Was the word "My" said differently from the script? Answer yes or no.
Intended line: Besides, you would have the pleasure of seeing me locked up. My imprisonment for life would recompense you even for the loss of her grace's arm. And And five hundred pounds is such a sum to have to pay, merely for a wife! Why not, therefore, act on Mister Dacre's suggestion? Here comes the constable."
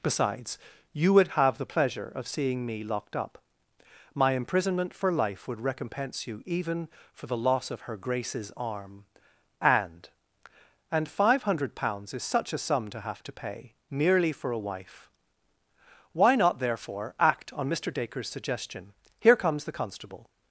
no